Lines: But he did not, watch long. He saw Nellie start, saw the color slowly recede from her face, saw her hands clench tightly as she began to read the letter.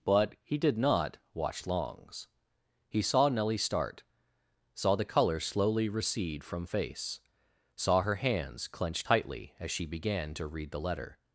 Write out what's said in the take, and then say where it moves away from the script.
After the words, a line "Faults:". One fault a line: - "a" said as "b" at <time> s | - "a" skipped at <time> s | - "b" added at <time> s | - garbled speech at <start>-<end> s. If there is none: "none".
But he did not, watch longs. He saw Nellie start, saw the color slowly recede from face, saw her hands clench tightly as she began to read the letter.
Faults:
- "long" said as "longs" at 1.7 s
- "her" skipped at 6.7 s